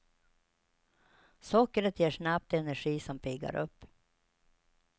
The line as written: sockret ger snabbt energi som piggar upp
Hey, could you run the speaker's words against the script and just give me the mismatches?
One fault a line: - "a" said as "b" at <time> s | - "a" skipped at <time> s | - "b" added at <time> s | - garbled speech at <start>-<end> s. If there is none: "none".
none